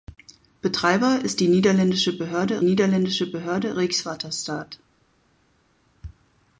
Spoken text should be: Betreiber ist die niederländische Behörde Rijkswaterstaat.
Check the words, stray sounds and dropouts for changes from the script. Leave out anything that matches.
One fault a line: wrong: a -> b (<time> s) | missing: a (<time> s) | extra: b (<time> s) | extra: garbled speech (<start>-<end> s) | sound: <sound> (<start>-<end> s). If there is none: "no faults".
extra: niederländische Behörde (2.6 s)